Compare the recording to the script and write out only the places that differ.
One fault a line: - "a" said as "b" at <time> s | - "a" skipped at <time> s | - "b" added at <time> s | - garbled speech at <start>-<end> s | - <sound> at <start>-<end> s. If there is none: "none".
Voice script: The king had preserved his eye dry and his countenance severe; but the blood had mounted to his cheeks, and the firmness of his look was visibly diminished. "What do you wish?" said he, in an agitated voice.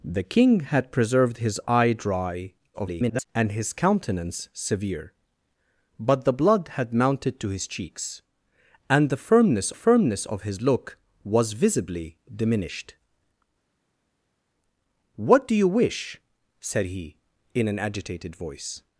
- garbled speech at 2.7-3.3 s
- "firmness" added at 9.7 s